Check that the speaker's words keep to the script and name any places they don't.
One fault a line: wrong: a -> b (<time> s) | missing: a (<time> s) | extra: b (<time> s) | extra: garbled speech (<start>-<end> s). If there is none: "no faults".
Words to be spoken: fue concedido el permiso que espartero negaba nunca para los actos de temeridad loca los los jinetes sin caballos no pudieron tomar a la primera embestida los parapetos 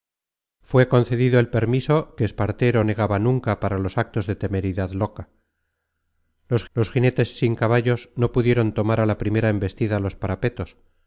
no faults